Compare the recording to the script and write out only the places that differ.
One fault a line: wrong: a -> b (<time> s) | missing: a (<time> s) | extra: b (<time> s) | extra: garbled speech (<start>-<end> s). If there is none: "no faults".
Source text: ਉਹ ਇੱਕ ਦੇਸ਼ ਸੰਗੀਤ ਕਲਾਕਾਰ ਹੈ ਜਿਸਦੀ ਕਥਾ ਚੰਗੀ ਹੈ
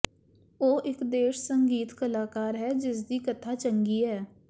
no faults